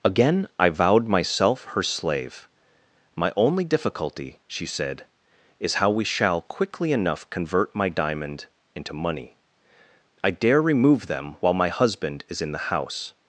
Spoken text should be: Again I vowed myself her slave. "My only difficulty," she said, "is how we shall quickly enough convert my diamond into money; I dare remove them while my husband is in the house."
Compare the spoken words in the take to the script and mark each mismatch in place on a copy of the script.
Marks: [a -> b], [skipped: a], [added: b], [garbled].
Again I vowed myself her slave. "My only difficulty," she said, "is how we shall quickly enough convert my diamond into money; I dare remove them while my husband is in the house."